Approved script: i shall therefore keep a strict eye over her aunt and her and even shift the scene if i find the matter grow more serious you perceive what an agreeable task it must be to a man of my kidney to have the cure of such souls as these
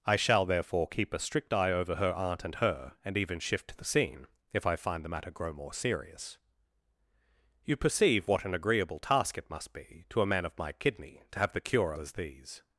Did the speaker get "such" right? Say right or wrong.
wrong